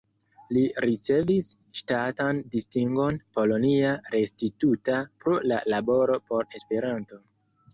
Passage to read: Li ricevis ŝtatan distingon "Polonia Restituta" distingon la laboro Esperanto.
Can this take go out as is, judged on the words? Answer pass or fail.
fail